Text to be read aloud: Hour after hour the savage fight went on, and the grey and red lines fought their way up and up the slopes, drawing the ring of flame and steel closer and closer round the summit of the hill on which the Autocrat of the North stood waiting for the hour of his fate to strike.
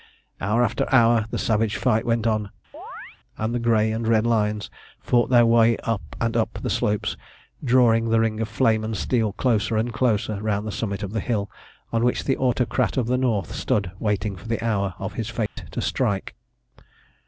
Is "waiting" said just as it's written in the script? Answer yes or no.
yes